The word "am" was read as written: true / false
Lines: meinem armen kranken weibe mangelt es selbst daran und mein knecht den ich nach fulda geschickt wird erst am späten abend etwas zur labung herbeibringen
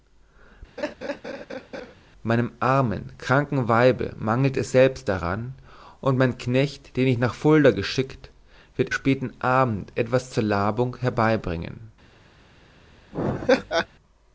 false